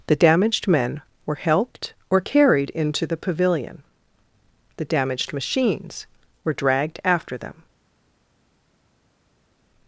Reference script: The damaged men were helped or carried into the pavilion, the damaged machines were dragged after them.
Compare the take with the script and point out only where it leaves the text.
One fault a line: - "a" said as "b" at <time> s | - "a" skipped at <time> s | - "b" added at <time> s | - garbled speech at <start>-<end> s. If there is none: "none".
none